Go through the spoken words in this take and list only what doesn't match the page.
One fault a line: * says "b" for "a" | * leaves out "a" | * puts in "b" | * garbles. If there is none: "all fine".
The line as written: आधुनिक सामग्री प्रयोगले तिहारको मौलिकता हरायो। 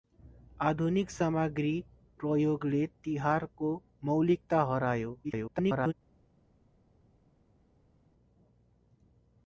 * garbles